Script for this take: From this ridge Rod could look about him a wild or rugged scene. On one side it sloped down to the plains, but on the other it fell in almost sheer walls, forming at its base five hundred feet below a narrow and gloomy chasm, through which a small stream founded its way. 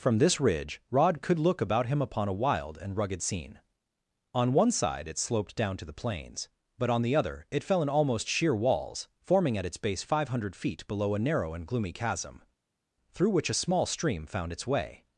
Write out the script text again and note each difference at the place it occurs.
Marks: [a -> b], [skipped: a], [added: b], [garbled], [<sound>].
From this ridge Rod could look about him [added: upon] a wild [or -> and] rugged scene. On one side it sloped down to the plains, but on the other it fell in almost sheer walls, forming at its base five hundred feet below a narrow and gloomy chasm, through which a small stream [founded -> found] its way.